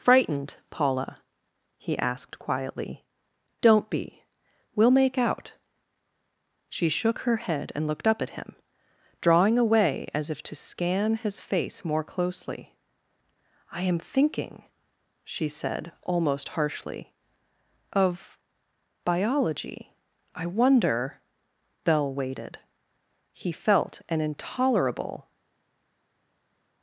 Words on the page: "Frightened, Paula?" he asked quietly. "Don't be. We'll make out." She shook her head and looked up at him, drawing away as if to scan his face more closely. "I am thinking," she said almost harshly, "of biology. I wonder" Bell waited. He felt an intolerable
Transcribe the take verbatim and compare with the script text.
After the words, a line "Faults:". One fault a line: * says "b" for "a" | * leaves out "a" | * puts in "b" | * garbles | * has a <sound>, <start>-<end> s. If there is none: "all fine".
"Frightened, Paula?" he asked quietly. "Don't be. We'll make out." She shook her head and looked up at him, drawing away as if to scan his face more closely. "I am thinking," she said almost harshly, "of biology. I wonder" Bell waited. He felt an intolerable
Faults:
all fine